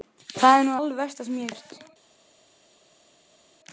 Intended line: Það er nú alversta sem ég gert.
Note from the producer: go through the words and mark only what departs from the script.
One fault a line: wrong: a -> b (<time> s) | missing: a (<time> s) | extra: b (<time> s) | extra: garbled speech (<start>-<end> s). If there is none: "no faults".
no faults